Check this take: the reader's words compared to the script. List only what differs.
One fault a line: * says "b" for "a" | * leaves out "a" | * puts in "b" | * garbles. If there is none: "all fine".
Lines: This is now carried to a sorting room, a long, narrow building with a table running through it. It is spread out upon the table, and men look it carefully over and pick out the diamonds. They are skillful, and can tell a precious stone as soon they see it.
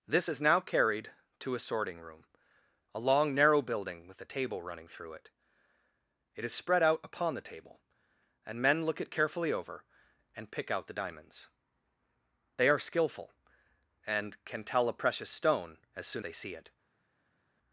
all fine